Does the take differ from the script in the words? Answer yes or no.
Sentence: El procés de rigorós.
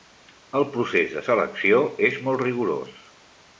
yes